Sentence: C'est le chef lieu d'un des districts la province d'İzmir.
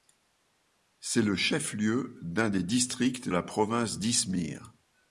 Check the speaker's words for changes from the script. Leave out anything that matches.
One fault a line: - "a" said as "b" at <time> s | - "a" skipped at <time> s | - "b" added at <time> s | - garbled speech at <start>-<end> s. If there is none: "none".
none